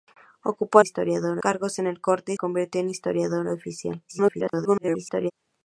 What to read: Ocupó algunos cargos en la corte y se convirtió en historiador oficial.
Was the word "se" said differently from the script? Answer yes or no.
yes